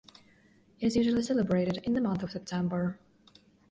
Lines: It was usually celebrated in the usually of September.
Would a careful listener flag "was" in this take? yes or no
yes